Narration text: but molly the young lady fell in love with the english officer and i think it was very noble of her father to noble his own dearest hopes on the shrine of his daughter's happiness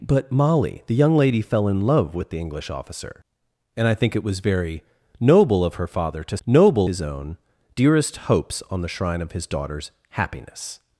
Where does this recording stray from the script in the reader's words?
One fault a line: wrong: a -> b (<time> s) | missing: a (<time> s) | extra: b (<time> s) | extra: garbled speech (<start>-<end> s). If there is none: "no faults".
no faults